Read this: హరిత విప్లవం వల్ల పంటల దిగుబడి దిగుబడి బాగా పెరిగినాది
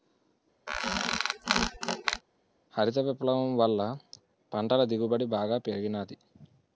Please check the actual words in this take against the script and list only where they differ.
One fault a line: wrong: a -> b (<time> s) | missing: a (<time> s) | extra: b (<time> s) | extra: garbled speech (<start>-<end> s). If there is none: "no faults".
missing: దిగుబడి (5.3 s)